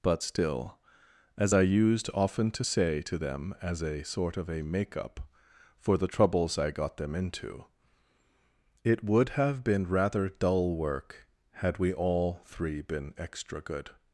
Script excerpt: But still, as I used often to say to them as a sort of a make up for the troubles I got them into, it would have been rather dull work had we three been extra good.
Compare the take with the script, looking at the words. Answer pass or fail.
fail